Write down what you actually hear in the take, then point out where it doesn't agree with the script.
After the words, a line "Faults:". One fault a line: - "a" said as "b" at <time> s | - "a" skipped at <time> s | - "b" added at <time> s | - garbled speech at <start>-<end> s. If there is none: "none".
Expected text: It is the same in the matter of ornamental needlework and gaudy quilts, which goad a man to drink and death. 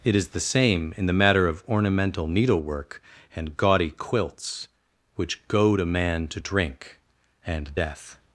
It is the same in the matter of ornamental needlework and gaudy quilts, which goad a man to drink and death.
Faults:
none